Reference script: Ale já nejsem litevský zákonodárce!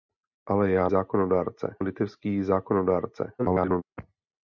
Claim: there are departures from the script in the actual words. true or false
true